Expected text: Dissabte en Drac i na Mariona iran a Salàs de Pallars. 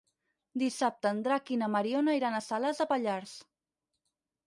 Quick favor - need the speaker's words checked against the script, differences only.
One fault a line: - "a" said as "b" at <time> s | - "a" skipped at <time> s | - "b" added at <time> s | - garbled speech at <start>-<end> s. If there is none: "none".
none